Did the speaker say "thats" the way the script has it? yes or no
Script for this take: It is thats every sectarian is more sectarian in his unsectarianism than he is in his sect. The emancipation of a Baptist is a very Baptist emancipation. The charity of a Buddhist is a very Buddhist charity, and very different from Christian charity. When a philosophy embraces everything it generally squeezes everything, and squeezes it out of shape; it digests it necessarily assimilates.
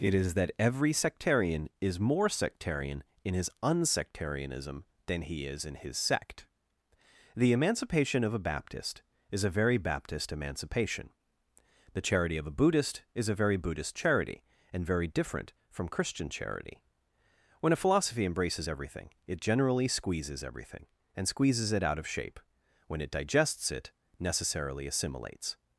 no